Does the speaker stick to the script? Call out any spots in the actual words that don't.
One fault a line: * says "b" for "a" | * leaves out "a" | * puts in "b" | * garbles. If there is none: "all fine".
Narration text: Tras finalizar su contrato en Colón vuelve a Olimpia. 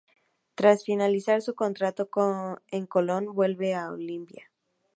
all fine